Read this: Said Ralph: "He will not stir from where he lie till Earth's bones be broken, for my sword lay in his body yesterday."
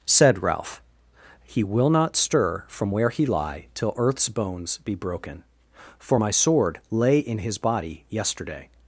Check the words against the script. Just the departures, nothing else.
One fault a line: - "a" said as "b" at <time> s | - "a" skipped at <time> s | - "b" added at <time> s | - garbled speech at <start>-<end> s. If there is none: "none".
none